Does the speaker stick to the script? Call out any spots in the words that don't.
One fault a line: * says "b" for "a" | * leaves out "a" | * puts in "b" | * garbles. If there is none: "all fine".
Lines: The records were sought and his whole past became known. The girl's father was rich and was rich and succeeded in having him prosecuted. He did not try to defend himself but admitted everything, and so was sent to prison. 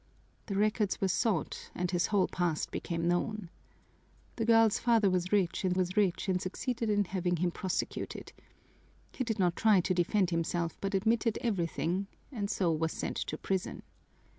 all fine